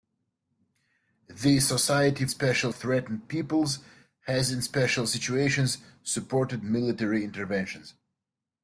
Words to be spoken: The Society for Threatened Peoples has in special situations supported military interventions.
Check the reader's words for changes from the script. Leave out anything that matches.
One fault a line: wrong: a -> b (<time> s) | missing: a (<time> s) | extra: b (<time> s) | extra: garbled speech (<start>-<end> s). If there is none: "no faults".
wrong: for -> special (2.3 s)